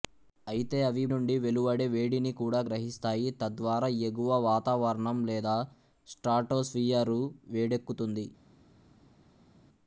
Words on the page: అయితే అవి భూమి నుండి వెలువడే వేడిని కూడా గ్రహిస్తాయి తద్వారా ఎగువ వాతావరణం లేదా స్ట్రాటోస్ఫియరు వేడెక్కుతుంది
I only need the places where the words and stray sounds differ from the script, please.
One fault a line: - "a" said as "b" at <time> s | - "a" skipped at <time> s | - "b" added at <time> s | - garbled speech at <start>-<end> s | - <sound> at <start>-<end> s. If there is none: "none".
- "భూమి" skipped at 1.0 s